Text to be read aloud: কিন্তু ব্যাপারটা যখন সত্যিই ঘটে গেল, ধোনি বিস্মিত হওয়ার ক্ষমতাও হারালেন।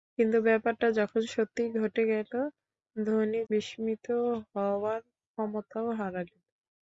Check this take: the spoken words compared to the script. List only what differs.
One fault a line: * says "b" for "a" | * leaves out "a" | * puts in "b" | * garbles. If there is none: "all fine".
all fine